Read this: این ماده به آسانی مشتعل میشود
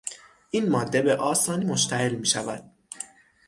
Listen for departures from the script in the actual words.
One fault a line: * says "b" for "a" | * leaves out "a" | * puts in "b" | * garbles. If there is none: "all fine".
all fine